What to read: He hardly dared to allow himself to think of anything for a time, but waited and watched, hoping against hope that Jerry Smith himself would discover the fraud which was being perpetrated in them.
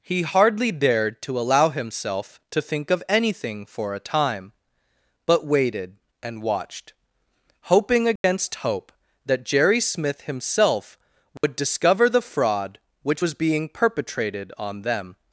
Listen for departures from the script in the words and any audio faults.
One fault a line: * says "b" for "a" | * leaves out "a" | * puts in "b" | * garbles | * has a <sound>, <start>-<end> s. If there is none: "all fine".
* has a dropout, 8.2-8.2 s
* has a dropout, 11.4-11.4 s
* says "on" for "in"